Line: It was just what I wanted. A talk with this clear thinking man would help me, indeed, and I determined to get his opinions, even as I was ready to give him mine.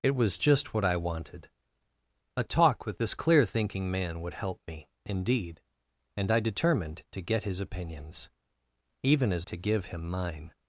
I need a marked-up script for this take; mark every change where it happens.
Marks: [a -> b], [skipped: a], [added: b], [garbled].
It was just what I wanted. A talk with this clear thinking man would help me, indeed, and I determined to get his opinions, even as [skipped: I was ready] to give him mine.